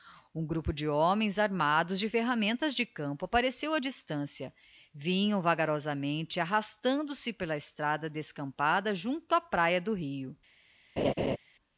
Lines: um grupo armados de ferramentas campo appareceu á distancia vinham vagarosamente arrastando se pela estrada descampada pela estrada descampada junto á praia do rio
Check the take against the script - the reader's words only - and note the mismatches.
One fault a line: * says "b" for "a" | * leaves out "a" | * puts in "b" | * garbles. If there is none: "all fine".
* puts in "de homens"
* puts in "de"
* leaves out "pela estrada descampada"